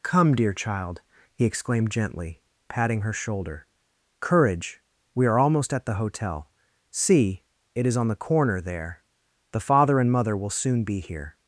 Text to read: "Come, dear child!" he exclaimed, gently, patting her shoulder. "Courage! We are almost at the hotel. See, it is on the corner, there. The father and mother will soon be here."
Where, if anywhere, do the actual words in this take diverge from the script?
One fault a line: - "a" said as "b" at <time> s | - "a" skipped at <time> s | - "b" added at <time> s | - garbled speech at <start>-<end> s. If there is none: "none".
none